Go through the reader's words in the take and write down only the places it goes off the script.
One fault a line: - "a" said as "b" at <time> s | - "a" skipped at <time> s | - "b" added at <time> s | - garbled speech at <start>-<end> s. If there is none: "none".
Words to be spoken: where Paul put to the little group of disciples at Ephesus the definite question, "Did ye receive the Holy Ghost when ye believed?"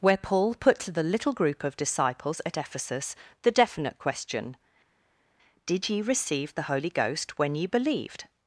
none